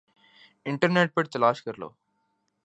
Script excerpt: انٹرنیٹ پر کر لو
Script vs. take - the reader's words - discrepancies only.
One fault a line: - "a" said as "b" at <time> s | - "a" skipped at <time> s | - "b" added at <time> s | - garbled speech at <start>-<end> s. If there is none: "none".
- "تلاش" added at 1.3 s